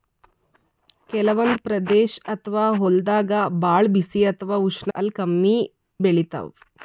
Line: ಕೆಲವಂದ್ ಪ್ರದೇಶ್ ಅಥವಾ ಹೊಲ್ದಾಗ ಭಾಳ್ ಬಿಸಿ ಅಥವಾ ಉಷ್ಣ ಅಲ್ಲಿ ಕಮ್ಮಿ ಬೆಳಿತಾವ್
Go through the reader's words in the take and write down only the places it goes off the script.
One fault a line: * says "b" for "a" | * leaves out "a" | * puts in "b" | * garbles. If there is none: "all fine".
all fine